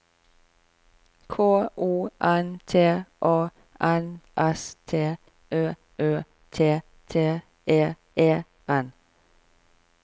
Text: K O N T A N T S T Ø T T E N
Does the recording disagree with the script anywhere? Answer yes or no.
yes